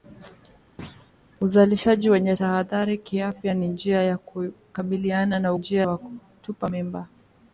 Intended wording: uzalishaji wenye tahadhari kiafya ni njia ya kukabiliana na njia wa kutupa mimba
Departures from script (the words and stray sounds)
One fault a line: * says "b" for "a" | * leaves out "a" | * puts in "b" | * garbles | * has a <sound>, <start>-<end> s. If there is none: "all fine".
* has a thud, 0.8-1.1 s